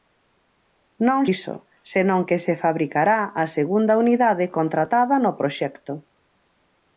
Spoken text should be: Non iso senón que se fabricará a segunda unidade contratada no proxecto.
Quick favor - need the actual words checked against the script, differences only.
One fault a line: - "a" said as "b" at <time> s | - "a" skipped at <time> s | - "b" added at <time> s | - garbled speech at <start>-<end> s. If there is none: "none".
none